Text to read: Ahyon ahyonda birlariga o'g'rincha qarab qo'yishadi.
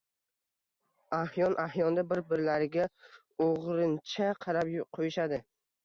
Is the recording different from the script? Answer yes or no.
yes